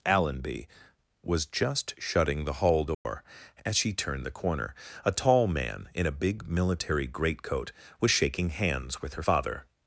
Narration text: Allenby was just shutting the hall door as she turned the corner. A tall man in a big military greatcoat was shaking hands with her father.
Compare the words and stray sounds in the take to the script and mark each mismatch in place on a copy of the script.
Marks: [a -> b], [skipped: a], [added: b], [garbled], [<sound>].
Allenby was just shutting the hall door [dropout] as she turned the corner. A tall man in a big military greatcoat was shaking hands with her father.